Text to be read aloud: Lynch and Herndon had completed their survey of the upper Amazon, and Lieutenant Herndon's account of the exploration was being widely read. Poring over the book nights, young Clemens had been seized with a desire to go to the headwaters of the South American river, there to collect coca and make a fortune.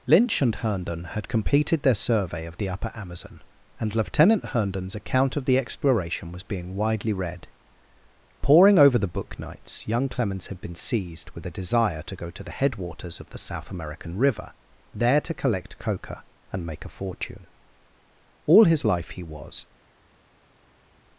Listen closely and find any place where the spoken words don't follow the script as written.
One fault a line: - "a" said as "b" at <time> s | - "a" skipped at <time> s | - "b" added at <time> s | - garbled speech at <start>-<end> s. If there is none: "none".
- "All his life he was" added at 18.5 s